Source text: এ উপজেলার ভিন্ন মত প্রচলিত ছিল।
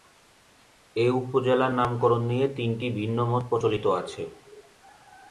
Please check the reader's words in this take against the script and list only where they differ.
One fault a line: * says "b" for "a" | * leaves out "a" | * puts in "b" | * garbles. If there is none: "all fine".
* puts in "নামকরণ নিয়ে তিনটি"
* says "আছে" for "ছিল"